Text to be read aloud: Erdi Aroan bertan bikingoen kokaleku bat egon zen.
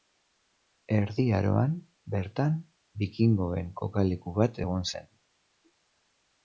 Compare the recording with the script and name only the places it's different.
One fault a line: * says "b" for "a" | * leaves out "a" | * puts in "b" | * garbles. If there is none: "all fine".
all fine